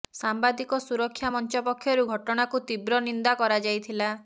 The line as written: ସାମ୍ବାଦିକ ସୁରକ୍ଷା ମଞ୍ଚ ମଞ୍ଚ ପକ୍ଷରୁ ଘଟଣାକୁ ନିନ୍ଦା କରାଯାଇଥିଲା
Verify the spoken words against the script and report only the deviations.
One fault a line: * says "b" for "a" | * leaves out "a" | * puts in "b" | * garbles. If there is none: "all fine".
* leaves out "ମଞ୍ଚ"
* puts in "ତୀବ୍ର"